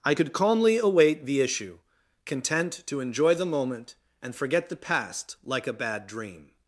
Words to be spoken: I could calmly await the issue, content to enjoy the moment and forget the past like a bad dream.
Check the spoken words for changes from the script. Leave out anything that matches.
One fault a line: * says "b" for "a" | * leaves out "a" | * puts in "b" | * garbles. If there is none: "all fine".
all fine